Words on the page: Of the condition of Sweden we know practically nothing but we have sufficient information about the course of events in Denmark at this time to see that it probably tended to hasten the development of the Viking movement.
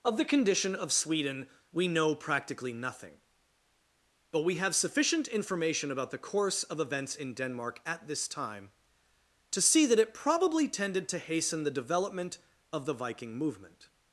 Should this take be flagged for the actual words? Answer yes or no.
no